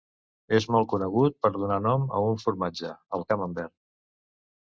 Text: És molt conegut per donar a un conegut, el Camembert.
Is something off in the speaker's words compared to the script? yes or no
yes